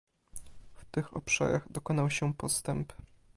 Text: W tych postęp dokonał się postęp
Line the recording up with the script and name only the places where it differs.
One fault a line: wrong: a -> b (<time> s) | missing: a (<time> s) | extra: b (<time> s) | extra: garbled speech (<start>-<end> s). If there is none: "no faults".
wrong: postęp -> obszarach (1.2 s)